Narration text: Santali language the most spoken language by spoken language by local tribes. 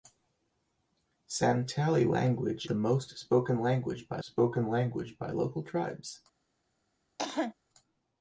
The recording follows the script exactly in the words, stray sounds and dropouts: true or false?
false